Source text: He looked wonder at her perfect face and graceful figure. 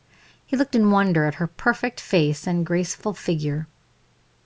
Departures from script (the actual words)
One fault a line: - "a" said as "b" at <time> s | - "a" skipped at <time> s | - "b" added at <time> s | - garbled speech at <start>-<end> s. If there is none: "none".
- "in" added at 0.7 s